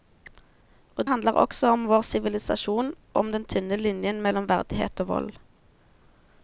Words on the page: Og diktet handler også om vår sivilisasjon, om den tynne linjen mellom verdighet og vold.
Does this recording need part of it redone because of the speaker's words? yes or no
yes